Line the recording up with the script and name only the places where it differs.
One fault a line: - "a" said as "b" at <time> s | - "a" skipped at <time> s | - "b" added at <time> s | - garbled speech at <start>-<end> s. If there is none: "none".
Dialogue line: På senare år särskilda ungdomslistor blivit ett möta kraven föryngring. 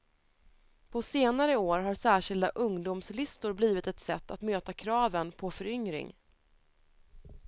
- "har" added at 1.8 s
- "sätt att" added at 4.0 s
- "på" added at 5.3 s